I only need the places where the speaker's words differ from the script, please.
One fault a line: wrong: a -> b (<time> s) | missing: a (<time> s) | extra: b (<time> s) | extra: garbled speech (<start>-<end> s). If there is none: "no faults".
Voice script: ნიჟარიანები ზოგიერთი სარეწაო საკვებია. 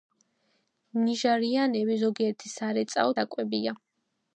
no faults